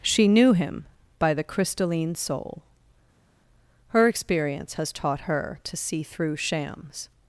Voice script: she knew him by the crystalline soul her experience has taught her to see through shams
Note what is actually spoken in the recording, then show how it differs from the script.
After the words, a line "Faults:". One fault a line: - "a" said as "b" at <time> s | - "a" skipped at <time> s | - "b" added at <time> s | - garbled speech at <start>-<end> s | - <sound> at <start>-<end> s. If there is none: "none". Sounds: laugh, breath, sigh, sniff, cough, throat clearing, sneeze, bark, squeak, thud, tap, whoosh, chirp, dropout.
she knew him by the crystalline soul her experience has taught her to see through shams
Faults:
none